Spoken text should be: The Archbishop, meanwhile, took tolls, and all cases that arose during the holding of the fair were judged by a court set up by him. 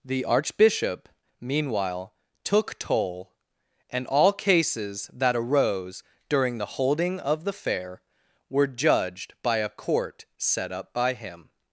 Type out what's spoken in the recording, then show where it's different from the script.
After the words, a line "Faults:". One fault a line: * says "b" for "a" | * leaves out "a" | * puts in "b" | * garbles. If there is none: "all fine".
The Archbishop, meanwhile, took toll, and all cases that arose during the holding of the fair were judged by a court set up by him.
Faults:
* says "toll" for "tolls"